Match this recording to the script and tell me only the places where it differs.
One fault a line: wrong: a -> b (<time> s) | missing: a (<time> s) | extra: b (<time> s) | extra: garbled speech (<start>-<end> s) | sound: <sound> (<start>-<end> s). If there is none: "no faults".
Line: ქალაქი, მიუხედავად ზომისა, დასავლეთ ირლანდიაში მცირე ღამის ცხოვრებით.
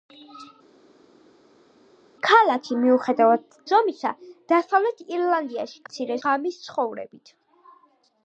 no faults